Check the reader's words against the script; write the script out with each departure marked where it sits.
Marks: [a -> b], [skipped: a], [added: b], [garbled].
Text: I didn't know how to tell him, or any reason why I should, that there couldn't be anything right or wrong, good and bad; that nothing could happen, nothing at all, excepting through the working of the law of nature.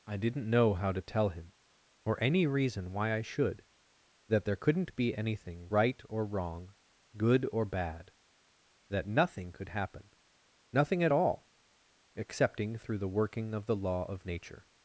I didn't know how to tell him, or any reason why I should, that there couldn't be anything right or wrong, good [and -> or] bad; that nothing could happen, nothing at all, excepting through the working of the law of nature.